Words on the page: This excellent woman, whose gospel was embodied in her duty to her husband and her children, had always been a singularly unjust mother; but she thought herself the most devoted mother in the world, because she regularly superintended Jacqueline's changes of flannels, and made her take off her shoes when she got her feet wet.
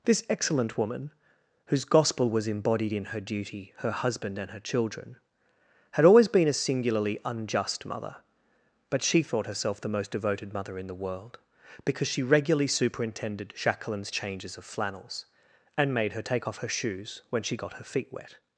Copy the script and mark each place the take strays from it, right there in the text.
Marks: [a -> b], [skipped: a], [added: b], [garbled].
This excellent woman, whose gospel was embodied in her duty [skipped: to] her husband and her children, had always been a singularly unjust mother; but she thought herself the most devoted mother in the world, because she regularly superintended Jacqueline's changes of flannels, and made her take off her shoes when she got her feet wet.